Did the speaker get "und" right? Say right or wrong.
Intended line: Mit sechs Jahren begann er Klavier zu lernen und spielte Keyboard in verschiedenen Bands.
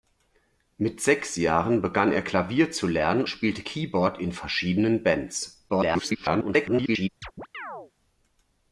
wrong